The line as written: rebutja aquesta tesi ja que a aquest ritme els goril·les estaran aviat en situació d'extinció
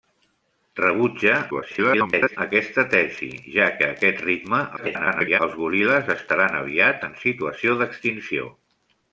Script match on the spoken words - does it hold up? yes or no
no